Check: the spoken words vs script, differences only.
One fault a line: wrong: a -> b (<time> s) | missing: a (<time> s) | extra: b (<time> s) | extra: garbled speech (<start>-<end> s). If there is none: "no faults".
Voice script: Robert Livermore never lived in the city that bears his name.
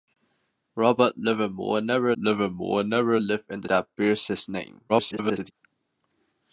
extra: Livermore never (2.1 s)
missing: city (3.7 s)
extra: garbled speech (4.9-5.5 s)